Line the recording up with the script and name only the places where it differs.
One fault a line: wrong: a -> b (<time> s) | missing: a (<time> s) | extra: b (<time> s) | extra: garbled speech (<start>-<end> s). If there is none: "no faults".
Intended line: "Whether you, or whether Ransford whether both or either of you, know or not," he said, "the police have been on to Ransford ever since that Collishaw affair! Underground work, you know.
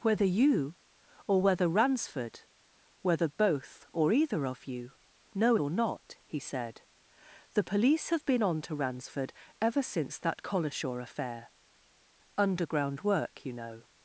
no faults